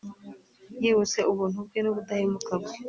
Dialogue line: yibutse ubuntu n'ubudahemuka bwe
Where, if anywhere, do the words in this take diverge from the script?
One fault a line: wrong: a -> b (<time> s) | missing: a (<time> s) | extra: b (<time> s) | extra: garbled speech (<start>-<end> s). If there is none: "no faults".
extra: bwe (1.7 s)